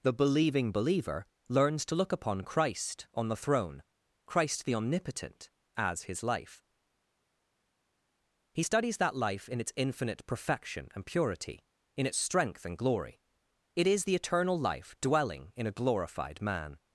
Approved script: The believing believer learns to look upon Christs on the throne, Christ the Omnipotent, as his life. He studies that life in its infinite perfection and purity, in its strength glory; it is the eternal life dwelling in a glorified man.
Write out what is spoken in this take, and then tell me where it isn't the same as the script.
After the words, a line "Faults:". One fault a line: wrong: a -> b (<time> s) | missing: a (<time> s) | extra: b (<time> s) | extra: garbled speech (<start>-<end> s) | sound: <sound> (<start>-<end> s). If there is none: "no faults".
The believing believer learns to look upon Christ on the throne, Christ the Omnipotent, as his life. He studies that life in its infinite perfection and purity, in its strength and glory; it is the eternal life dwelling in a glorified man.
Faults:
wrong: Christs -> Christ (2.4 s)
extra: and (12.6 s)